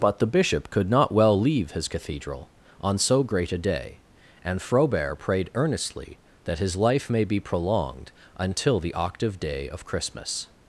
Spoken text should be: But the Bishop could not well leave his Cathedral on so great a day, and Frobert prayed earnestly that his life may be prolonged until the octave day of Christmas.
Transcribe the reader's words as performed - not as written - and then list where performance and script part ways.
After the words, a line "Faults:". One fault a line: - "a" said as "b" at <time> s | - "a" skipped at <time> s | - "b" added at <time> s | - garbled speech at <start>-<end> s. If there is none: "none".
But the Bishop could not well leave his Cathedral on so great a day, and Frobert prayed earnestly that his life may be prolonged until the octave day of Christmas.
Faults:
none